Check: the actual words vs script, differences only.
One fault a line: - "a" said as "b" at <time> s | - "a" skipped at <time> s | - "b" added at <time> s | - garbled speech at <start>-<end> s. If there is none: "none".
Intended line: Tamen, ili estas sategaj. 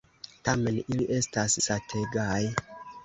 none